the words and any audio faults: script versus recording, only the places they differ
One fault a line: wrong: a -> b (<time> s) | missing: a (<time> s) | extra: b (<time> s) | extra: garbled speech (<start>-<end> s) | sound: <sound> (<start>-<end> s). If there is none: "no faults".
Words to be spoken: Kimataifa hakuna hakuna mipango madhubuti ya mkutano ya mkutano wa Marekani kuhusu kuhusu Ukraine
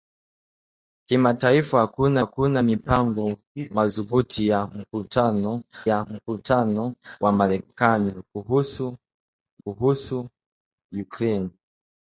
no faults